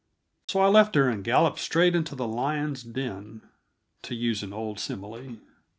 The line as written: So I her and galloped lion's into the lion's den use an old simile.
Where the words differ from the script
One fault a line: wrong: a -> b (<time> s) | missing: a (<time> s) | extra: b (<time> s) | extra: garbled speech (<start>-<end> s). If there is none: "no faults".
extra: left (0.7 s)
wrong: lion's -> straight (1.6 s)
extra: to (4.0 s)